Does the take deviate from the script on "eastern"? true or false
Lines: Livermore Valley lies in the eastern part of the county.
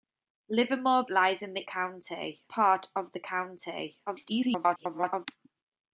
true